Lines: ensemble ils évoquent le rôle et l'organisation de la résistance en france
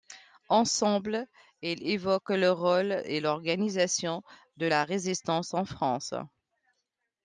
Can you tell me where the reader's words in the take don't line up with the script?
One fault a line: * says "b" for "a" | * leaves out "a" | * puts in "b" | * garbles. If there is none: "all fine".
all fine